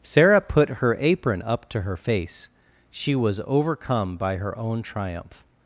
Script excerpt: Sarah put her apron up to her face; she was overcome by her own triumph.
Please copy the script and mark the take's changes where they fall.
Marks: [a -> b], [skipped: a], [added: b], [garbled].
Sarah put her apron up to her face; she was overcome by her own triumph.